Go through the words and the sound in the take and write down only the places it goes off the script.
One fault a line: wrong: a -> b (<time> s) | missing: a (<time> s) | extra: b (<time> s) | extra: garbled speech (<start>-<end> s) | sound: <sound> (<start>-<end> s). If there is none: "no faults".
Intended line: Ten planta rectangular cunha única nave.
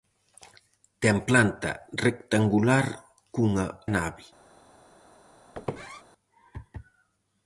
missing: única (3.7 s)
sound: squeak (5.5-6.0 s)